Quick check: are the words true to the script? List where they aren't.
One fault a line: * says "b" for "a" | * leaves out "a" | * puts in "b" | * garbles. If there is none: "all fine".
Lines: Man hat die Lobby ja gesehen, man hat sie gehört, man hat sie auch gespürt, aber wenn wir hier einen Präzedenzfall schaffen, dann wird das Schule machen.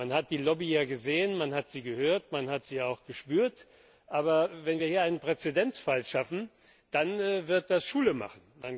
all fine